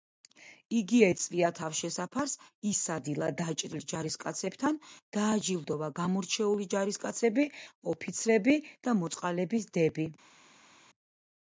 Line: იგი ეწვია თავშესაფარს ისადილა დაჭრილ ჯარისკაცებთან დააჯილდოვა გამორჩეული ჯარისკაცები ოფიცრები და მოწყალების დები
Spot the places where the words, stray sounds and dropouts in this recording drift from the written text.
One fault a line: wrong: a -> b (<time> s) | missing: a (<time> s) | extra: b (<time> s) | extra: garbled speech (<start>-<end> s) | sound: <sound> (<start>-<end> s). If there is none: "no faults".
no faults